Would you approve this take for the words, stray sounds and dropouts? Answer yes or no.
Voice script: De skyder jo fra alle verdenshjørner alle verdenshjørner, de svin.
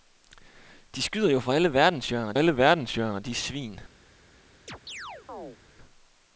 no